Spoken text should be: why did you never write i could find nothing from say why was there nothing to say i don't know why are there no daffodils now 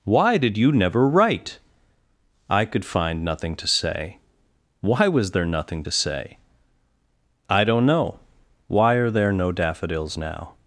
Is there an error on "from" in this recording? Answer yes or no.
yes